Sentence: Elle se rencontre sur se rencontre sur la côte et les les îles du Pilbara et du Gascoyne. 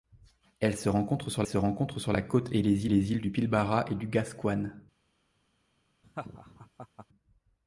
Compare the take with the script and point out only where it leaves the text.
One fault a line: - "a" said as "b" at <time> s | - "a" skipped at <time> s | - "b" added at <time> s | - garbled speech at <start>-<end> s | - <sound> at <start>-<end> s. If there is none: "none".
- laugh at 6.0-7.1 s